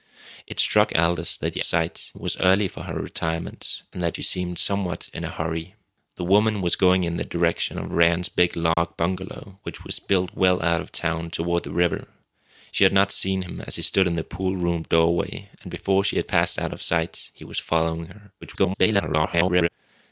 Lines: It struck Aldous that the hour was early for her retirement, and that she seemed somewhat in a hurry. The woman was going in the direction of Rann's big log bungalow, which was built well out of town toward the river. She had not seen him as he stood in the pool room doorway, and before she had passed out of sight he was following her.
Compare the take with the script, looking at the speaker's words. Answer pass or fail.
fail